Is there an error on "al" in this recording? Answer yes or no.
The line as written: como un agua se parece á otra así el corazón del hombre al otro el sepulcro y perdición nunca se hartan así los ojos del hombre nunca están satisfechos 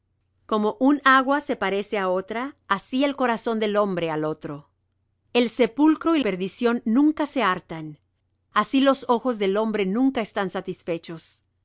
no